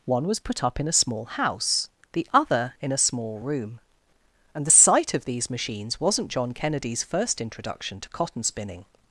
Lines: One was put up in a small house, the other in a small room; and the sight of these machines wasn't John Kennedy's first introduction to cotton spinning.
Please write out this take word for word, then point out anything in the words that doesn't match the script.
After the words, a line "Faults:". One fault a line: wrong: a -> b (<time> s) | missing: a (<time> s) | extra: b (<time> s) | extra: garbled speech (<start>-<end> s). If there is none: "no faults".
One was put up in a small house, the other in a small room; and the sight of these machines wasn't John Kennedy's first introduction to cotton spinning.
Faults:
no faults